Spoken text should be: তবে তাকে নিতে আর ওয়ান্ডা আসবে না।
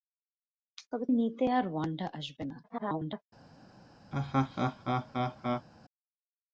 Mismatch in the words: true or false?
true